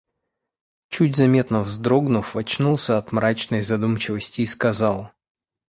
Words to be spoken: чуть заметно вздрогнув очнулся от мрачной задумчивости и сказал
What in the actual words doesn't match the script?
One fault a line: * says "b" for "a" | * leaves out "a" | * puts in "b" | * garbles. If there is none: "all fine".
all fine